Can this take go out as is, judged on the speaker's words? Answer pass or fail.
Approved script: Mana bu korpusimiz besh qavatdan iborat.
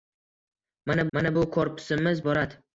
fail